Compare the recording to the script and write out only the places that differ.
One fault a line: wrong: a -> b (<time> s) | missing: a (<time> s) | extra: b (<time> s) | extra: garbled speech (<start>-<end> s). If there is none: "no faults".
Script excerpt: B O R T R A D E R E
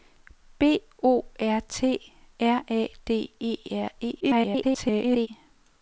extra: garbled speech (4.2-5.3 s)